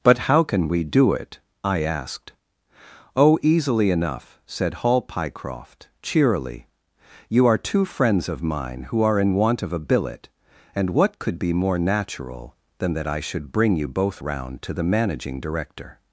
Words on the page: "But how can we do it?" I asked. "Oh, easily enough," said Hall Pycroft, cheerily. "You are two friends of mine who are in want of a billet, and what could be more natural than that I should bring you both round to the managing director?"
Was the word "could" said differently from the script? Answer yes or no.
no